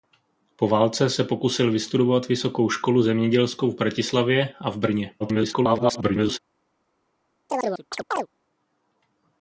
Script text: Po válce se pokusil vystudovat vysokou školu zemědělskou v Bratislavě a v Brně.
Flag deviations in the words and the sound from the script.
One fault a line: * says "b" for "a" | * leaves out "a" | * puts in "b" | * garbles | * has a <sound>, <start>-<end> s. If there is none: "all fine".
* garbles
* has a chirp, 7.5-8.3 s